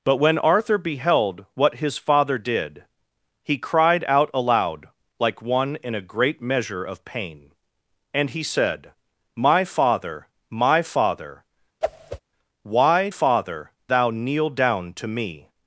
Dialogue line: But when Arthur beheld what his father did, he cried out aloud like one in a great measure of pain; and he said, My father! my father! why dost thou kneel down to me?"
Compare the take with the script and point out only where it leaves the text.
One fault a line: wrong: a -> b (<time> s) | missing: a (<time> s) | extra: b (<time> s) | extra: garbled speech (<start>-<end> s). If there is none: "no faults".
wrong: dost -> father (13.1 s)